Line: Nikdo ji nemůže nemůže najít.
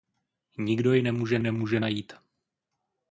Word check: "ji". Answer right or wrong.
right